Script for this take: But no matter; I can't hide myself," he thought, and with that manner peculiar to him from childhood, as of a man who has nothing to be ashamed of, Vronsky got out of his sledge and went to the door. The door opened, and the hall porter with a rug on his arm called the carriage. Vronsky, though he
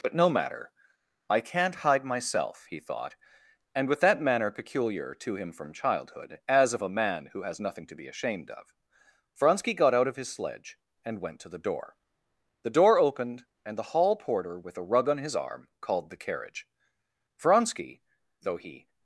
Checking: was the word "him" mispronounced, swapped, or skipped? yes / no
no